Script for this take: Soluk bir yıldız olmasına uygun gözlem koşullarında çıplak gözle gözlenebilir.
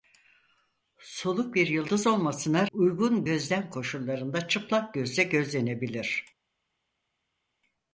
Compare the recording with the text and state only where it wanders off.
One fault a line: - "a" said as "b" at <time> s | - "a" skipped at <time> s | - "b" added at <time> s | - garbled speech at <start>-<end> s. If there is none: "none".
none